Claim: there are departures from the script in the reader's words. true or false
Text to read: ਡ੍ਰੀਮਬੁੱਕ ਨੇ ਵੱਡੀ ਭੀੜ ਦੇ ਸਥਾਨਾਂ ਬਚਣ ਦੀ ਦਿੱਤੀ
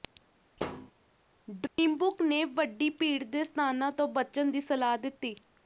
true